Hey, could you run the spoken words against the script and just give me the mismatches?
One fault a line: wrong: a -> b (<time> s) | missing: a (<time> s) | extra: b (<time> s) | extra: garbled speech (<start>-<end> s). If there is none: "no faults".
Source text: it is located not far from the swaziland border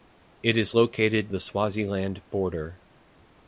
missing: not far from (1.3 s)